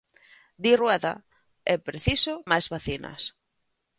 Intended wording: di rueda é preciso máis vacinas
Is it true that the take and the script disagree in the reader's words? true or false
false